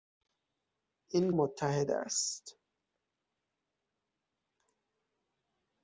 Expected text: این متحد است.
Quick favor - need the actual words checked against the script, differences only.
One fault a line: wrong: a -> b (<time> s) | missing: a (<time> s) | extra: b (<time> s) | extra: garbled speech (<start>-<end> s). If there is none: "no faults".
no faults